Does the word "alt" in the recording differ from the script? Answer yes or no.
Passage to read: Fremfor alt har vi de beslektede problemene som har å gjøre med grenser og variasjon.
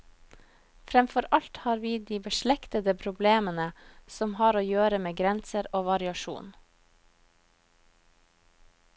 no